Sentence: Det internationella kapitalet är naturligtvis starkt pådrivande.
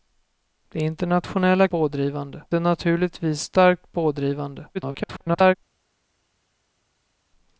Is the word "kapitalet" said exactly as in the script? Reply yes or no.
no